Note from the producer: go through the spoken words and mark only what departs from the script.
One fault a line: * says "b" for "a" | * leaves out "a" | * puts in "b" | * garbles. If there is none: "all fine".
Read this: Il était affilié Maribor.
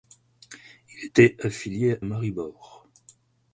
all fine